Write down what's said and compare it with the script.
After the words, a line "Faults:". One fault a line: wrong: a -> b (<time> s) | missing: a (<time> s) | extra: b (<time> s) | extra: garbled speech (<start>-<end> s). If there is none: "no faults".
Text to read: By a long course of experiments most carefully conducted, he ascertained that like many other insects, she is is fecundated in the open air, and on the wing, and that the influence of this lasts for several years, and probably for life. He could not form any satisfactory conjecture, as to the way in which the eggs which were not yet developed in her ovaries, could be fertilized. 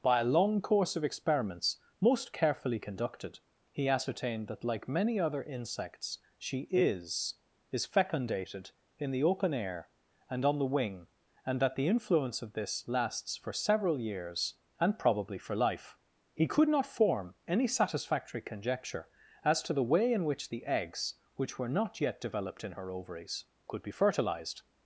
By a long course of experiments most carefully conducted, he ascertained that like many other insects, she is is fecundated in the open air, and on the wing, and that the influence of this lasts for several years, and probably for life. He could not form any satisfactory conjecture, as to the way in which the eggs which were not yet developed in her ovaries, could be fertilized.
Faults:
no faults